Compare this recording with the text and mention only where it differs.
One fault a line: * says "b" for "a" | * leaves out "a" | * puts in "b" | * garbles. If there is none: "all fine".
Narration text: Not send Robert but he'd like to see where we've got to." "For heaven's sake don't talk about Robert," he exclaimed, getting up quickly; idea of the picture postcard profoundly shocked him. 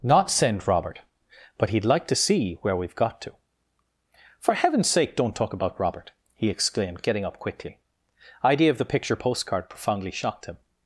all fine